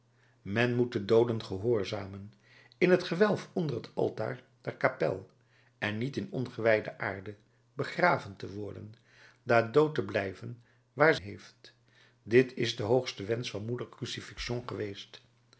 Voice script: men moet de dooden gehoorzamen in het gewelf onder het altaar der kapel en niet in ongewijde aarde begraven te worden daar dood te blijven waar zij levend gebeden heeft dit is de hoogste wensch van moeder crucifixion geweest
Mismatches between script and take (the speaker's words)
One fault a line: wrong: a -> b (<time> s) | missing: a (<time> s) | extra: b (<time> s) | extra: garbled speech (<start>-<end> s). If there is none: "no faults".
missing: zij levend gebeden (11.2 s)